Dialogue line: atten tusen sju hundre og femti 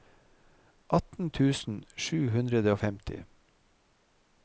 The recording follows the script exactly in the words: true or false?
true